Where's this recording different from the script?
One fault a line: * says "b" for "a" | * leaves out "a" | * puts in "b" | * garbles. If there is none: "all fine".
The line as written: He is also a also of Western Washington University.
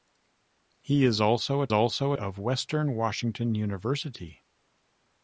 all fine